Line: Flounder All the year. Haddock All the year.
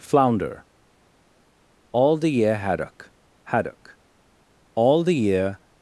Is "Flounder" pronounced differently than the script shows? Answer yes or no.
no